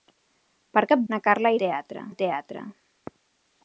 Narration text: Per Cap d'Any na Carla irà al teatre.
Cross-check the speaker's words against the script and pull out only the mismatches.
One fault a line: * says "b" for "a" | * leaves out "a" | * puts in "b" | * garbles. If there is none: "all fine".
* leaves out "d'Any"
* says "teatre" for "irà"